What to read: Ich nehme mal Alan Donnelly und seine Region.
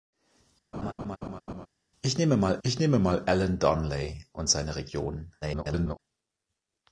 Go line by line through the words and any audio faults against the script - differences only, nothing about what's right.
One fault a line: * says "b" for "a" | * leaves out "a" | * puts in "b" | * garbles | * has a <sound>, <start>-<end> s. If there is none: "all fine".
* has a laugh, 0.7-1.7 s
* puts in "ich nehme mal"
* garbles